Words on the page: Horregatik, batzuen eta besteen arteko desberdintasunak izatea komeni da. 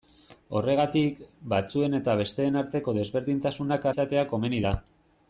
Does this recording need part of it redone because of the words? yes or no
no